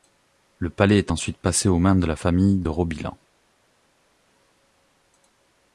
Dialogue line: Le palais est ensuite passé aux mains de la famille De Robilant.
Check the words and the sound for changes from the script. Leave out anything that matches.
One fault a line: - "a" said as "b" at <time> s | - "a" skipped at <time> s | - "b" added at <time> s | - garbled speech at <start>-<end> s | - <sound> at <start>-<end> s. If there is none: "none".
none